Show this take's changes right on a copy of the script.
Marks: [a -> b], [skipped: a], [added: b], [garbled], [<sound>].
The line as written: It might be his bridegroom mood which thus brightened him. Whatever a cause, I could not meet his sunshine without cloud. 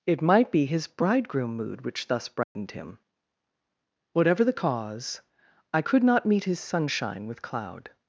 It might be his bridegroom mood which thus brightened [dropout] him. Whatever [a -> the] cause, I could not meet his sunshine [without -> with] cloud.